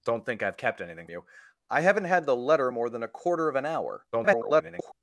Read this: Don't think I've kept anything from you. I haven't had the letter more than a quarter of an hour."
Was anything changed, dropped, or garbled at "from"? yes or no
yes